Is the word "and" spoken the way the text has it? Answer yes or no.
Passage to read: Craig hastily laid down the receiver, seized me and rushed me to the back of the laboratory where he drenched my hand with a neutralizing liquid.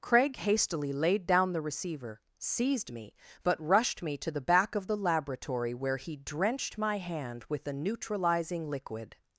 no